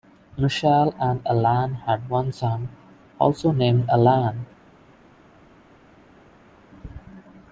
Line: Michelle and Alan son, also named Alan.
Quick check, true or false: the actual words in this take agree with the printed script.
false